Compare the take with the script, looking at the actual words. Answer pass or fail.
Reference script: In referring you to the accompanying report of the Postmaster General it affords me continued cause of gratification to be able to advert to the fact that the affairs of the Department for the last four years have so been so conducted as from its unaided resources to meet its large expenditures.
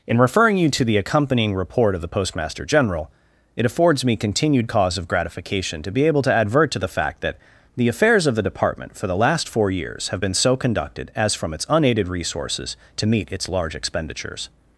fail